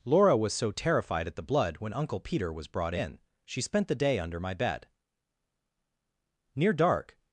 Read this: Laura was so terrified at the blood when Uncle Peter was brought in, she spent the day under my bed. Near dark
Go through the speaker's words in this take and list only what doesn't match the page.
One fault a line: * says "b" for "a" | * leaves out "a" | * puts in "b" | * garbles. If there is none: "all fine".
all fine